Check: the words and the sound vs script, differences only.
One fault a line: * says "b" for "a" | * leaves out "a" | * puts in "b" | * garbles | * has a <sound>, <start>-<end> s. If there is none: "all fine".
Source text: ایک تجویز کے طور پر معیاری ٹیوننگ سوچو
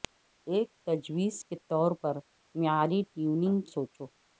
all fine